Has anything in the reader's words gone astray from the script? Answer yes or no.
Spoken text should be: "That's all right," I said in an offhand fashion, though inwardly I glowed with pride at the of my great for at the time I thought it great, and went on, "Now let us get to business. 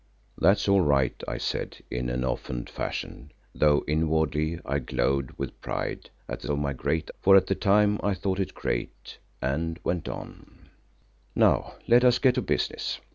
no